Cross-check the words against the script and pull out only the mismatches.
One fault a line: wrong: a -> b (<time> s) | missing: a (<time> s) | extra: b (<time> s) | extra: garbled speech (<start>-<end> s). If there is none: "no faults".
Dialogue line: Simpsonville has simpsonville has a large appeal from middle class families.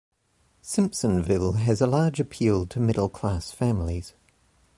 missing: simpsonville has (1.8 s)
wrong: from -> to (2.6 s)